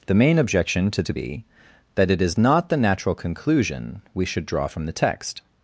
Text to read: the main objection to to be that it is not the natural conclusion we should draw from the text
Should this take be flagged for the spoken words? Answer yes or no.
no